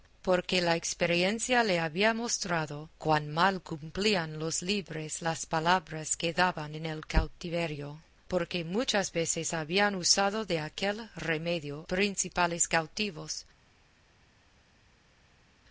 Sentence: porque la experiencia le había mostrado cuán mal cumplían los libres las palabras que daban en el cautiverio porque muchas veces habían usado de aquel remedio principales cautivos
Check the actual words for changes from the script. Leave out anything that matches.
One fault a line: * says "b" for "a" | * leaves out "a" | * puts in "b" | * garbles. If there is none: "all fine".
all fine